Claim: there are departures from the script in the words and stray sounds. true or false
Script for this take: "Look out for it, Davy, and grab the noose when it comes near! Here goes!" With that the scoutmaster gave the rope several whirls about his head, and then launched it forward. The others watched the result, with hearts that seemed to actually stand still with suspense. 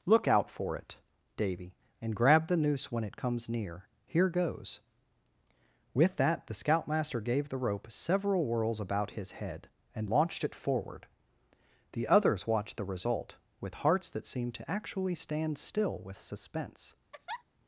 true